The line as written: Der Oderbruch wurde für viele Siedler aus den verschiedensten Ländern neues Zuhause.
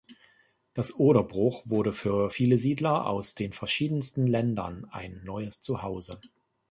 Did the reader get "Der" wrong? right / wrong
wrong